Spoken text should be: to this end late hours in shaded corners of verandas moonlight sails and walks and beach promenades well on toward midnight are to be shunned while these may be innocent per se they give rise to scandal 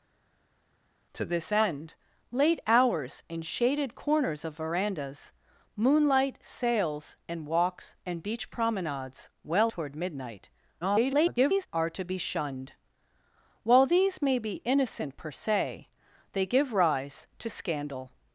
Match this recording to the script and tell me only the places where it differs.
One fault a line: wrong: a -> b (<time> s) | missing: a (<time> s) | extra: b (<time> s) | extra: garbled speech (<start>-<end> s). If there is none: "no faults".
missing: on (9.7 s)
extra: garbled speech (10.8-11.7 s)